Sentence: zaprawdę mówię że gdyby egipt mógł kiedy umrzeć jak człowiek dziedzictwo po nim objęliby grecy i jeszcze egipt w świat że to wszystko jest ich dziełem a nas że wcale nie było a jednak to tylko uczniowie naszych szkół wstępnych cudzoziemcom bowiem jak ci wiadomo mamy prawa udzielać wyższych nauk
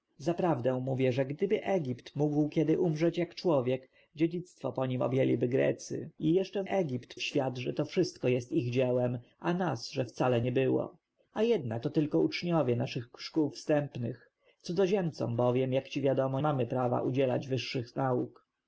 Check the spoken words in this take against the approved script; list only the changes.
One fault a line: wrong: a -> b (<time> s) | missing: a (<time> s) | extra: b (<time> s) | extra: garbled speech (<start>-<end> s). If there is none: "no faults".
no faults